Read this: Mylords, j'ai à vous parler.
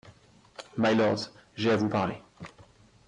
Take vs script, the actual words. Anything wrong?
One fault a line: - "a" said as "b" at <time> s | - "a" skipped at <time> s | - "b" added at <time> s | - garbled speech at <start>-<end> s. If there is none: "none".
none